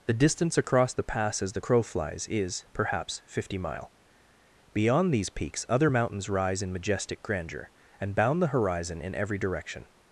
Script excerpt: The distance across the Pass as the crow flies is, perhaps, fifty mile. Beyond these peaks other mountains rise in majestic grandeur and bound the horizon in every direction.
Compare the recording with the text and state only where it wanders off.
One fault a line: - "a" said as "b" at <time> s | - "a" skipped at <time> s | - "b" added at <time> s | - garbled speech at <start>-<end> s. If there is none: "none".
none